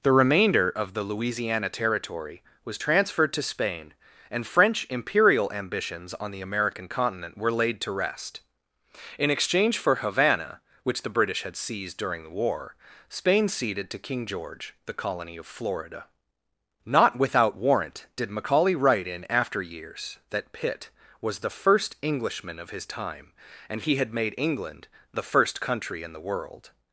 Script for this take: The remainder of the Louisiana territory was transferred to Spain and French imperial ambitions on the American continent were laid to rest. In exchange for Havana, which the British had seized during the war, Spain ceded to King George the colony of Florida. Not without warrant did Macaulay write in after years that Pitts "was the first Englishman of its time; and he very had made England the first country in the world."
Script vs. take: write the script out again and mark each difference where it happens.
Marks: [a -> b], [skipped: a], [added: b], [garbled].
The remainder of the Louisiana territory was transferred to Spain and French imperial ambitions on the American continent were laid to rest. In exchange for Havana, which the British had seized during the war, Spain ceded to King George the colony of Florida. Not without warrant did Macaulay write in after years that [Pitts -> Pitt] "was the first Englishman of [its -> his] time; and he [skipped: very] had made England the first country in the world."